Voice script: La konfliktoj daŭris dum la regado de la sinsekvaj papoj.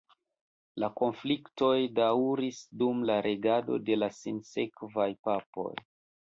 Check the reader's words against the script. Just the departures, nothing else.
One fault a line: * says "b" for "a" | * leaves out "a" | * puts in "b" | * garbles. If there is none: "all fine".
all fine